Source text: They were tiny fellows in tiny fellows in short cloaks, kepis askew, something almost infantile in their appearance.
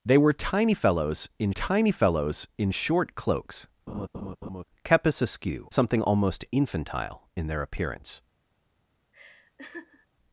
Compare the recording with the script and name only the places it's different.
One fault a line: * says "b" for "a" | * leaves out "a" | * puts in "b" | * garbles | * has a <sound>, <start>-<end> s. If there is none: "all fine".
* has a laugh, 3.9-4.6 s
* has a laugh, 9.1-10.1 s